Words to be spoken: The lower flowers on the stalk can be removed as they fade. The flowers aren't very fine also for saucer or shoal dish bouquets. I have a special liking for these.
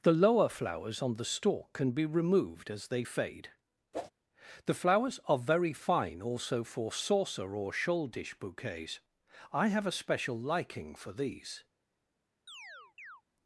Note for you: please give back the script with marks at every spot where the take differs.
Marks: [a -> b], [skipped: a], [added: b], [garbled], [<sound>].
The lower flowers on the stalk can be removed as they fade. [whoosh] The flowers [aren't -> are] very fine also for saucer or shoal dish bouquets. I have a special liking for these. [chirp]